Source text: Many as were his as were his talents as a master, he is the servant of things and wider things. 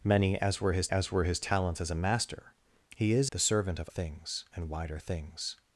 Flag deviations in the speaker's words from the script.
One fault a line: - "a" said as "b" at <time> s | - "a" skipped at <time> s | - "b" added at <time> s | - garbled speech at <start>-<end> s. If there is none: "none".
none